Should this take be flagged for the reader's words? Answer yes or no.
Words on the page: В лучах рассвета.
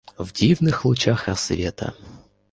yes